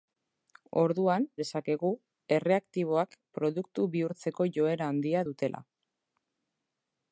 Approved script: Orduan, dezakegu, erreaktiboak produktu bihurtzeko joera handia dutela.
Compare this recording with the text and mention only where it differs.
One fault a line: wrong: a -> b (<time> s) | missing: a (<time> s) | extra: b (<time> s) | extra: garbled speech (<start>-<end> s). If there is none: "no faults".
no faults